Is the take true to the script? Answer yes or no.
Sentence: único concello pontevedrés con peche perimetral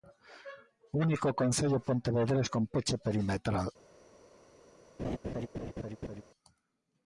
yes